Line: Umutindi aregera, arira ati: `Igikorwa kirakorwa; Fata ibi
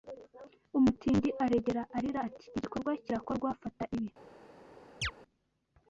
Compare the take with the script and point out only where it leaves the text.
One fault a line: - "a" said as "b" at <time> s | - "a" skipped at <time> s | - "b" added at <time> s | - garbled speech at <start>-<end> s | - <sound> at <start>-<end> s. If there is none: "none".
- chirp at 5.0-5.1 s